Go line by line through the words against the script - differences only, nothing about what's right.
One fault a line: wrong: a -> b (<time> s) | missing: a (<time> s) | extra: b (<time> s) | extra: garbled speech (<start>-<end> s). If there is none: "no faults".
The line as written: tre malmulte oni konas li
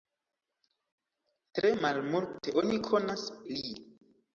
no faults